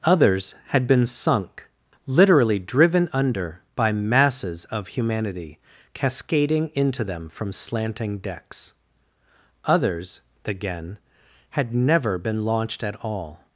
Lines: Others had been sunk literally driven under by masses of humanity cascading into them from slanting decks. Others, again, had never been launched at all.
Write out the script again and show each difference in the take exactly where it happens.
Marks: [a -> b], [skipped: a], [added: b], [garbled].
Others had been sunk literally driven under by masses of humanity cascading into them from slanting decks. Others, again, had never been launched at all.